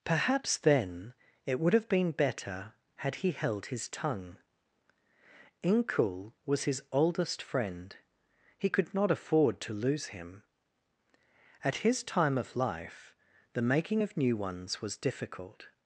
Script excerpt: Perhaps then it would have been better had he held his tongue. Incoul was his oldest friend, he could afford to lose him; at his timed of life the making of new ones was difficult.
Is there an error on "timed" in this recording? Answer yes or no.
yes